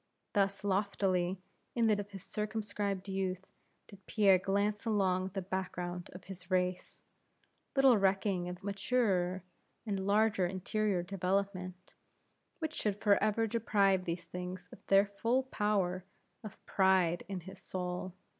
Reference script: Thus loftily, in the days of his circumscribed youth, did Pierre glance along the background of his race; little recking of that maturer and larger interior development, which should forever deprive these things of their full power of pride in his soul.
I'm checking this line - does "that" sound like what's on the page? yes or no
no